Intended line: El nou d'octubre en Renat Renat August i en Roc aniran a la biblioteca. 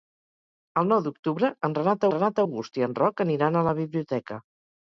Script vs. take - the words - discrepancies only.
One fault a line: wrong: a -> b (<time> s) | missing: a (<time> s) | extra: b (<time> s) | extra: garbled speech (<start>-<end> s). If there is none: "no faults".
no faults